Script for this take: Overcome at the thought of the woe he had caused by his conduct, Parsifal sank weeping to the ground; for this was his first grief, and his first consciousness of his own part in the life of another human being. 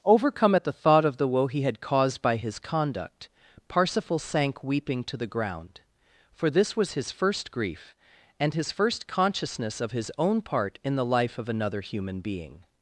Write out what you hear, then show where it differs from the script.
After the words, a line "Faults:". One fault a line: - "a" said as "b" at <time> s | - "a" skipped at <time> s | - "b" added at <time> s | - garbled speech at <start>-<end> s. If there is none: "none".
Overcome at the thought of the woe he had caused by his conduct, Parsifal sank weeping to the ground; for this was his first grief, and his first consciousness of his own part in the life of another human being.
Faults:
none